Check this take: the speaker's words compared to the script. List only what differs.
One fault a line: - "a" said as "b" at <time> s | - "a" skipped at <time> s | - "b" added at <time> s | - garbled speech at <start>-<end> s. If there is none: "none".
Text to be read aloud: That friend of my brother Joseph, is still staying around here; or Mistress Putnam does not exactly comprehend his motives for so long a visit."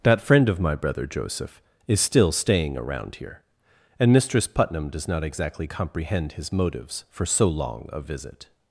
- "or" said as "and" at 4.0 s